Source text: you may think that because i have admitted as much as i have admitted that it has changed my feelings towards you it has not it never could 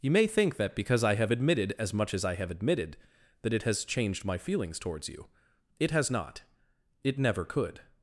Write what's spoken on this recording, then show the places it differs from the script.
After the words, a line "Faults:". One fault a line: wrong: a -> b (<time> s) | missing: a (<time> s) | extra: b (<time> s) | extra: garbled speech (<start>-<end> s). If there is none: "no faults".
you may think that because i have admitted as much as i have admitted that it has changed my feelings towards you it has not it never could
Faults:
no faults